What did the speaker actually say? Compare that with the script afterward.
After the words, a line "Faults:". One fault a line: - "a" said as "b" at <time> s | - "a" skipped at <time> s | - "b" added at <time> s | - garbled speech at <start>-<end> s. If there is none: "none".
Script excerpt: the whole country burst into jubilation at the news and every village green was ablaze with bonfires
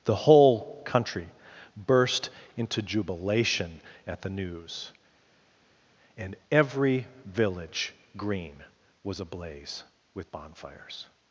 the whole country burst into jubilation at the news and every village green was ablaze with bonfires
Faults:
none